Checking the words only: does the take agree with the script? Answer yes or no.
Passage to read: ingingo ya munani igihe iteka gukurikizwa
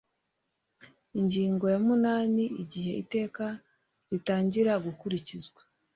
no